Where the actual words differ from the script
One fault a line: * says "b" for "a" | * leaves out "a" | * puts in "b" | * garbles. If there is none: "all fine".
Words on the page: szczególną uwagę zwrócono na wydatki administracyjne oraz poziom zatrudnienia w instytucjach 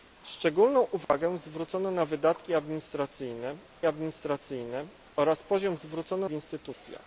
* puts in "administracyjne"
* says "zwrócono" for "zatrudnienia"